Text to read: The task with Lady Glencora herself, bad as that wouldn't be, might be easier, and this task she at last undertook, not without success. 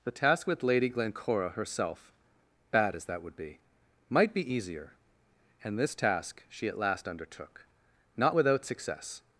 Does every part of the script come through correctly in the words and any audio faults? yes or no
no